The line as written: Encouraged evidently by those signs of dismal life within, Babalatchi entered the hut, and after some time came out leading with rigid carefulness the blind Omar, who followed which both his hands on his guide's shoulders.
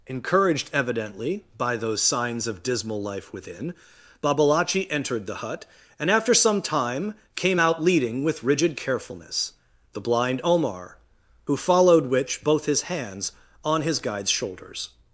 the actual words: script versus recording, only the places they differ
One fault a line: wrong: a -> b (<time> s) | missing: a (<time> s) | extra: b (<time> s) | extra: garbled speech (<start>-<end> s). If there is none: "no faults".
no faults